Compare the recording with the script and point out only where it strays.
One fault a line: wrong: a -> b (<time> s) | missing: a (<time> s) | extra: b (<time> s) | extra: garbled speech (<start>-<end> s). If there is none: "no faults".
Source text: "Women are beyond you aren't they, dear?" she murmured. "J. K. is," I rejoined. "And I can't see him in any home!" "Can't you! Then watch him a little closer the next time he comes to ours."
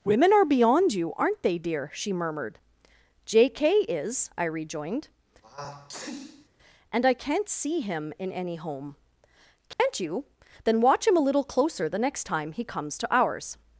no faults